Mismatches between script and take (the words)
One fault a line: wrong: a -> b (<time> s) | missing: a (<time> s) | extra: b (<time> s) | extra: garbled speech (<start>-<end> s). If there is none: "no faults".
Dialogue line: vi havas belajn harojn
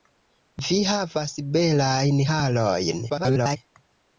extra: garbled speech (3.1-3.6 s)